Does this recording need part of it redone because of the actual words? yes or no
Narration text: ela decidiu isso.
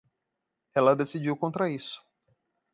yes